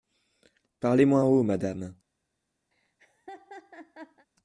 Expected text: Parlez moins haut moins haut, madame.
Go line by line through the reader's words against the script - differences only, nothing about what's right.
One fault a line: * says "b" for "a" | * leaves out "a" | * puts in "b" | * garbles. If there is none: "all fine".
* leaves out "moins haut"